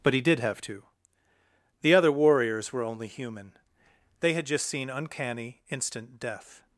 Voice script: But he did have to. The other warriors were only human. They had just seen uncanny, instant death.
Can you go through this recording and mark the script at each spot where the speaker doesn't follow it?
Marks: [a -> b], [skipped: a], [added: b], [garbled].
But he did have to. The other warriors were only human. They had just seen uncanny, instant death.